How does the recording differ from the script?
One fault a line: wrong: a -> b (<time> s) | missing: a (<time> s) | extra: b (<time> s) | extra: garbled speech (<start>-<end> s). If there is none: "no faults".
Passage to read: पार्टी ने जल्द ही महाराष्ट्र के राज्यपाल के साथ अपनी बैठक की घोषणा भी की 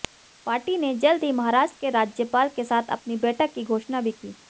no faults